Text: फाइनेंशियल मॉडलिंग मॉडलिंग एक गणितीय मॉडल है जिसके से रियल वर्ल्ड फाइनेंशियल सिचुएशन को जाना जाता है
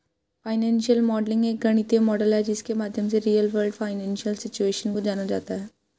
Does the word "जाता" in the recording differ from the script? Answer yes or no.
no